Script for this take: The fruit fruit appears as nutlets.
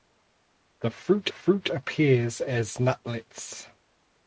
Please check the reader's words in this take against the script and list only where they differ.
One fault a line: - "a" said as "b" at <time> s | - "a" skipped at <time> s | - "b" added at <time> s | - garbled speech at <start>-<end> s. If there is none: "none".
none